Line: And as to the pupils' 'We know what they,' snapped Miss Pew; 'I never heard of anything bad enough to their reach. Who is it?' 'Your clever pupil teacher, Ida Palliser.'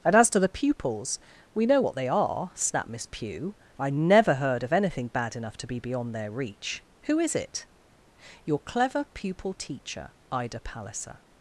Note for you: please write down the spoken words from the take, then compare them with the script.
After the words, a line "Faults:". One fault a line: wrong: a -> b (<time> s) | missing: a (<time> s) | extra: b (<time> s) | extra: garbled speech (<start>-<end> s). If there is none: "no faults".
And as to the pupils' 'We know what they are,' snapped Miss Pew; 'I never heard of anything bad enough to be beyond their reach. Who is it?' 'Your clever pupil teacher, Ida Palliser.'
Faults:
extra: are (2.1 s)
extra: be beyond (5.6 s)